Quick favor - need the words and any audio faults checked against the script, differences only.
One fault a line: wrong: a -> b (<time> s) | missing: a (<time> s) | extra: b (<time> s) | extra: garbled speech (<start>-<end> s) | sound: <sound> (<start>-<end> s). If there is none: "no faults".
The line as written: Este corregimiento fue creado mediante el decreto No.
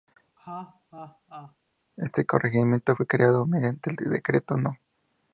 sound: laugh (0.4-1.6 s)